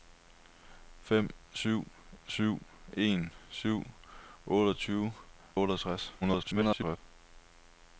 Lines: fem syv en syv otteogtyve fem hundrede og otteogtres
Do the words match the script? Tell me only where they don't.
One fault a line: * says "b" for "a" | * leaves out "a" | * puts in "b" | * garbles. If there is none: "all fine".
* puts in "syv"
* leaves out "fem hundrede"
* garbles